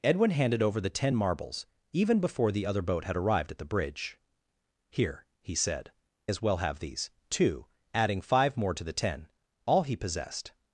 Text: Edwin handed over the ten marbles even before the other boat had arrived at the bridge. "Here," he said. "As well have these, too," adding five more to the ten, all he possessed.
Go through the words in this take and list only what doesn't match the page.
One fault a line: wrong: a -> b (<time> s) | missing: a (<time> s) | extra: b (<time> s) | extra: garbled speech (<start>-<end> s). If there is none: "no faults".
no faults